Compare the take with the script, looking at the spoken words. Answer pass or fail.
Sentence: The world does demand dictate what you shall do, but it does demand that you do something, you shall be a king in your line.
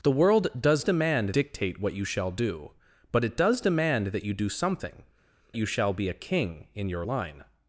pass